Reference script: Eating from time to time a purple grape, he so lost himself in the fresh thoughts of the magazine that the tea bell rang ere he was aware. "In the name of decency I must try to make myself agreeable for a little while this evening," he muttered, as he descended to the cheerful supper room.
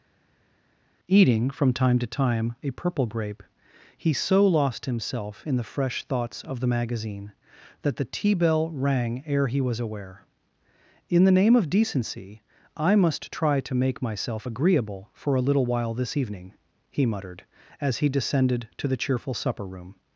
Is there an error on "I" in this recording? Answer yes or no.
no